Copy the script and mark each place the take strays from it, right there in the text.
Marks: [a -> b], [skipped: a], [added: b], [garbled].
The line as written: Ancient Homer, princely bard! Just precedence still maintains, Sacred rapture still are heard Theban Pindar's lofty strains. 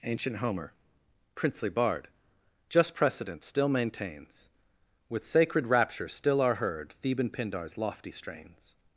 Ancient Homer, princely bard! Just precedence still maintains, [added: With] Sacred rapture still are heard Theban Pindar's lofty strains.